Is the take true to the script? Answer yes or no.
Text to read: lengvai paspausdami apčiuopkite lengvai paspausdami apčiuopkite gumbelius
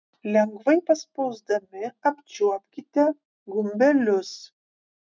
no